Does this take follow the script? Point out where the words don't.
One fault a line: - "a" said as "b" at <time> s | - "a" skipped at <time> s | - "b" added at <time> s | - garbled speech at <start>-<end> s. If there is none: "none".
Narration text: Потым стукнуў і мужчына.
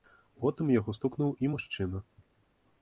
- "яго" added at 0.8 s